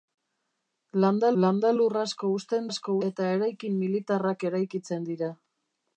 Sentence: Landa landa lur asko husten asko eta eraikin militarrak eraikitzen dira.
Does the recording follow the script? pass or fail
pass